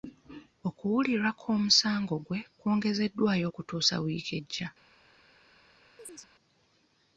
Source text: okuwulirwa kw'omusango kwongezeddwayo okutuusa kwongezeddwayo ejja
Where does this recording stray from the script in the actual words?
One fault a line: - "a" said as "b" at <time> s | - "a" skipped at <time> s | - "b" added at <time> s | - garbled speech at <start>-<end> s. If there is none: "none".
- "gwe" added at 2.3 s
- "kwongezeddwayo" said as "wiiki" at 4.0 s